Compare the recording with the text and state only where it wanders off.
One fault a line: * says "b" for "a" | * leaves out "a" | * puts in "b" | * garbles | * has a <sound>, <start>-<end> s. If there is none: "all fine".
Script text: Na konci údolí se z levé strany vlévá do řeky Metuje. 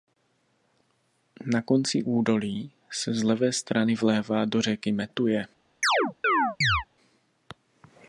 * has a chirp, 5.8-6.8 s